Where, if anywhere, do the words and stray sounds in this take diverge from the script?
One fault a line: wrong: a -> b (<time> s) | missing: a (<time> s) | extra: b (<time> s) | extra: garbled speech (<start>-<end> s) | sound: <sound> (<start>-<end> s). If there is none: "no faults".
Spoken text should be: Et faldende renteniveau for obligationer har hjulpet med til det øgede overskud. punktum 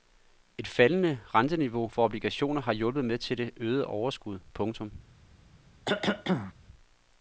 sound: cough (5.9-6.5 s)